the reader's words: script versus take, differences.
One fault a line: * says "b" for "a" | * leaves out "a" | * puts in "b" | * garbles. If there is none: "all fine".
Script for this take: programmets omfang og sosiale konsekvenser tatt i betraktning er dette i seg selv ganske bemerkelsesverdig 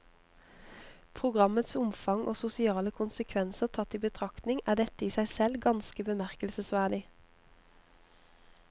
all fine